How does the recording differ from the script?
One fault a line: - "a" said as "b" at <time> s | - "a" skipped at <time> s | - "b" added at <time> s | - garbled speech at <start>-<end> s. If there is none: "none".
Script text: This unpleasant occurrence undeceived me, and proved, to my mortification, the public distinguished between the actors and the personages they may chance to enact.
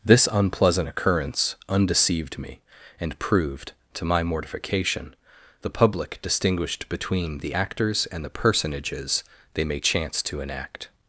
none